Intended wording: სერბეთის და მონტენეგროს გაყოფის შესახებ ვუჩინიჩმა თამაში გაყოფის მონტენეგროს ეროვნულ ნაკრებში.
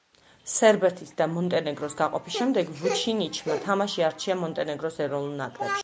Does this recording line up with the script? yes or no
no